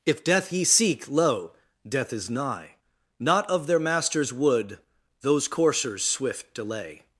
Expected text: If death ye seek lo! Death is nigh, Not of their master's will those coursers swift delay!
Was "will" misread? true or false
true